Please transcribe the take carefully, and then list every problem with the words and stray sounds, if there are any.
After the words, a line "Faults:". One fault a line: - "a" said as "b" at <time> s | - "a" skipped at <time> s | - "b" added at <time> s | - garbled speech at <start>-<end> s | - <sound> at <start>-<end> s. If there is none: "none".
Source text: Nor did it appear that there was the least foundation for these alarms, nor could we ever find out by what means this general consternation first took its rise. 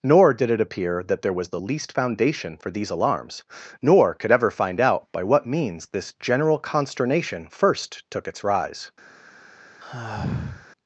Nor did it appear that there was the least foundation for these alarms, nor could ever find out by what means this general consternation first took its rise.
Faults:
- "we" skipped at 4.3 s
- sigh at 9.8-10.7 s